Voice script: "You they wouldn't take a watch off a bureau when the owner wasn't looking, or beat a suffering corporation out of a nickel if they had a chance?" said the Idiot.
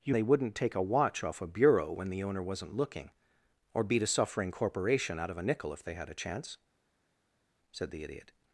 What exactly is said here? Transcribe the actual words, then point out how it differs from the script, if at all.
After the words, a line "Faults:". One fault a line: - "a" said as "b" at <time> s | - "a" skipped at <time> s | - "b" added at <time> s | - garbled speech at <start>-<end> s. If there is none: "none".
"You they wouldn't take a watch off a bureau when the owner wasn't looking, or beat a suffering corporation out of a nickel if they had a chance?" said the Idiot.
Faults:
none